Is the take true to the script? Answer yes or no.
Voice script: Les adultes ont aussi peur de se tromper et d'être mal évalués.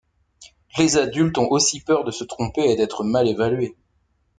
yes